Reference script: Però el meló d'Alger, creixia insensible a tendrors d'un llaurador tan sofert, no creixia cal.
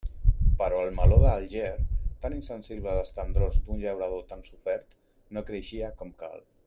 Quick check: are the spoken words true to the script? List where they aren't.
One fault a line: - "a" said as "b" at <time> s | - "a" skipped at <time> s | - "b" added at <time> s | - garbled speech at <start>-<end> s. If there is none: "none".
- "creixia" said as "tan" at 2.2 s
- "les" added at 3.0 s
- "com" added at 6.0 s